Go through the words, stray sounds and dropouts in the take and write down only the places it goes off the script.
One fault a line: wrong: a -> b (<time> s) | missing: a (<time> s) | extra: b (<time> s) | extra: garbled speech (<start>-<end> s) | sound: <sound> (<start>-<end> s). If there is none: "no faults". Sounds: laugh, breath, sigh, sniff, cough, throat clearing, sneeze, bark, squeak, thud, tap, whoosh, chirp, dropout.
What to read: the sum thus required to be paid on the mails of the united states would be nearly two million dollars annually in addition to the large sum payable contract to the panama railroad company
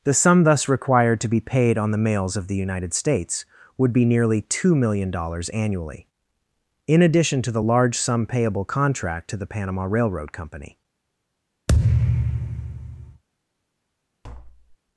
sound: thud (11.7-13.2 s)
sound: tap (14.2-14.8 s)